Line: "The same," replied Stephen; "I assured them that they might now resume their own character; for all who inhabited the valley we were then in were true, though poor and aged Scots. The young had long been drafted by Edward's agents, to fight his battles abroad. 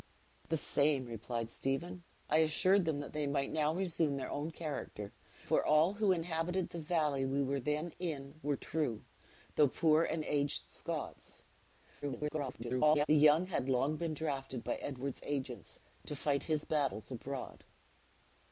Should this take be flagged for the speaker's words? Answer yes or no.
yes